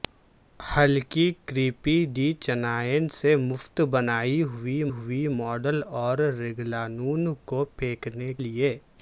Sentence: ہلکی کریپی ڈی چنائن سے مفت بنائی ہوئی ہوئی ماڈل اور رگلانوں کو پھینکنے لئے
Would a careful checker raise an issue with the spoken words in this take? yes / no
no